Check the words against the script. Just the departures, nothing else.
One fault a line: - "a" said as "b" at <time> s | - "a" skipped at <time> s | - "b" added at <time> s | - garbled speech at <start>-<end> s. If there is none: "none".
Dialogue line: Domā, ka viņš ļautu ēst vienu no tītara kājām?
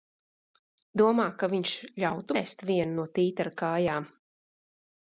none